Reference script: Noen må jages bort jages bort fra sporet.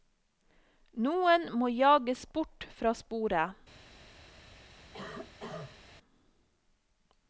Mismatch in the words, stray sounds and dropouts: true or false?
true